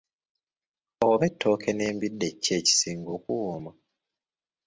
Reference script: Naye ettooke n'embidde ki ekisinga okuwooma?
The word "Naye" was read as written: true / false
false